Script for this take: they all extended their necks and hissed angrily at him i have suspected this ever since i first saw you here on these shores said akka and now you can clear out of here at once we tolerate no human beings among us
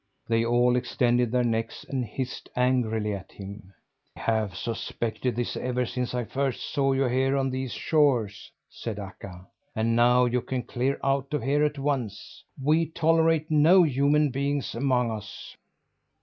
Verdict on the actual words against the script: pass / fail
fail